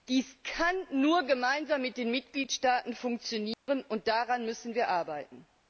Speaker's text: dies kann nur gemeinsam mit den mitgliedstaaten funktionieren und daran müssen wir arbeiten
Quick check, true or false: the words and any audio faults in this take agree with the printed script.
false